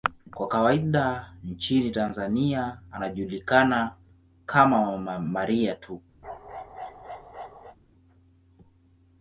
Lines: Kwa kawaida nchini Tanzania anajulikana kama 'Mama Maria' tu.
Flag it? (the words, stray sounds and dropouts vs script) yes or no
yes